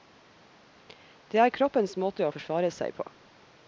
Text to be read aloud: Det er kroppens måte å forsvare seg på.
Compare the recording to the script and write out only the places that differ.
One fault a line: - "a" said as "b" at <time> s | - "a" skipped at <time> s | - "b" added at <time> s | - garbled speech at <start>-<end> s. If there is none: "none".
none